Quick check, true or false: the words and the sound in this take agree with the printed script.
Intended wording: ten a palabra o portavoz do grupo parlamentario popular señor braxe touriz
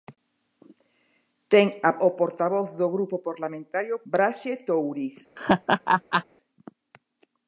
false